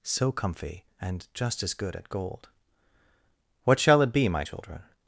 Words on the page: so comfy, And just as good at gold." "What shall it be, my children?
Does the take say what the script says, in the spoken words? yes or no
yes